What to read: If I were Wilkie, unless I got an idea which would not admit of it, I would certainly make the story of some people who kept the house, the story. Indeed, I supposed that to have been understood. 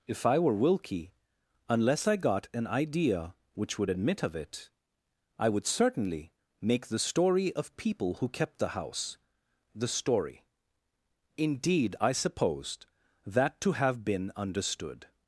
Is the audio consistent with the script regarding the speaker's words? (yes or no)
no